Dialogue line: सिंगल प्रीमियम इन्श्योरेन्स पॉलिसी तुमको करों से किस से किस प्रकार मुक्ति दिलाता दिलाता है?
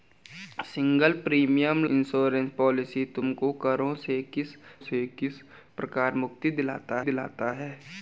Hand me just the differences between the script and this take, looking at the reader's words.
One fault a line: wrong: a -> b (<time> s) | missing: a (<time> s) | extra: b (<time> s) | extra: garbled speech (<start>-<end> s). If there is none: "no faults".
no faults